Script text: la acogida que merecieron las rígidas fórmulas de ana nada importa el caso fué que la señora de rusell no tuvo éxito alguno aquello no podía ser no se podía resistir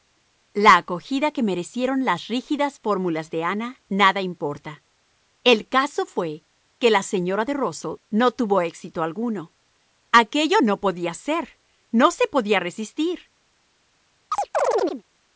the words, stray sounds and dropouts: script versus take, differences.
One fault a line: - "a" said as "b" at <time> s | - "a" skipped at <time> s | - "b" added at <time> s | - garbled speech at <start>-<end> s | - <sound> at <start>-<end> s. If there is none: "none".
- chirp at 14.3-15.0 s